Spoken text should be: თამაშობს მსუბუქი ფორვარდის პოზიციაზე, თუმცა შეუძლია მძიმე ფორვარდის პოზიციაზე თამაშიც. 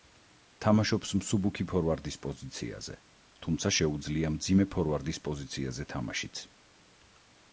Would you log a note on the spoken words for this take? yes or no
no